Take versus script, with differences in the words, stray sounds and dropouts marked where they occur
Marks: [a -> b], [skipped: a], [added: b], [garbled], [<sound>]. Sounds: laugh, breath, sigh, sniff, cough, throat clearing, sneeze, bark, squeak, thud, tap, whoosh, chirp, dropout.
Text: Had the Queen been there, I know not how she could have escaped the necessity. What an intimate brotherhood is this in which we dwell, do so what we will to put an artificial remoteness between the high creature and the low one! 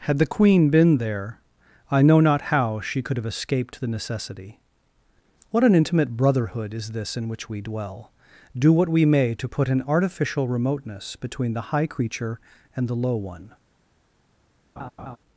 Had the Queen been there, I know not how she could have escaped the necessity. What an intimate brotherhood is this in which we dwell, do [skipped: so] what we [will -> may] to put an artificial remoteness between the high creature and the low one! [laugh]